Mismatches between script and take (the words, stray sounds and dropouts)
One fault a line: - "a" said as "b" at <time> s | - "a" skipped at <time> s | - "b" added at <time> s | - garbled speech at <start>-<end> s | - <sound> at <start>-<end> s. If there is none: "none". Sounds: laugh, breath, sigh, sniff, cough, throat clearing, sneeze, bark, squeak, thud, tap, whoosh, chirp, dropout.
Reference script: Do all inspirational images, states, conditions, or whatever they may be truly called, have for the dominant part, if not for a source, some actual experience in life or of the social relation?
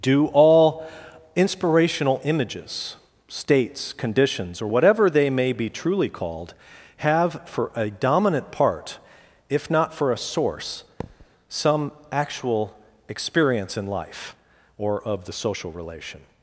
- "the" said as "a" at 7.7 s
- thud at 11.0-11.3 s